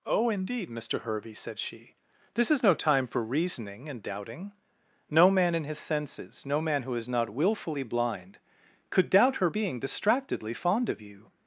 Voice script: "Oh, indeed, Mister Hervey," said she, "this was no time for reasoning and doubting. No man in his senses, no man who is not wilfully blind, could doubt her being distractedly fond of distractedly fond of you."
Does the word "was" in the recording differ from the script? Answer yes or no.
yes